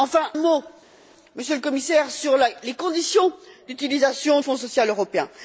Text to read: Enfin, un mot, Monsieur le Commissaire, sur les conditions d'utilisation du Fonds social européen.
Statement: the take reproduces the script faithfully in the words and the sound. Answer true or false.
false